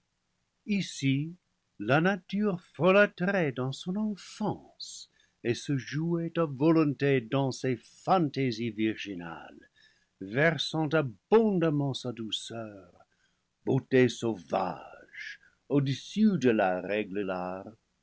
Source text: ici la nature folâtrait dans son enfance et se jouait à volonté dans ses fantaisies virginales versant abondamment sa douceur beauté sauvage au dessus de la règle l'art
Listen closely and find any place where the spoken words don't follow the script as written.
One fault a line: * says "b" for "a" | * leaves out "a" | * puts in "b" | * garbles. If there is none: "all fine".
all fine